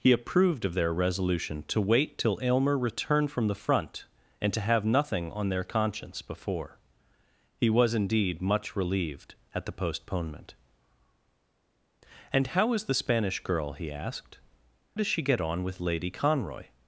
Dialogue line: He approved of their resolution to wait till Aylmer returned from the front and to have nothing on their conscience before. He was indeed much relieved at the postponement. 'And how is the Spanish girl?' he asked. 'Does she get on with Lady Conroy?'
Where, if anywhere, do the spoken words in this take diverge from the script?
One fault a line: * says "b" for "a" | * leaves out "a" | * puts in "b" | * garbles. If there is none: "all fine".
all fine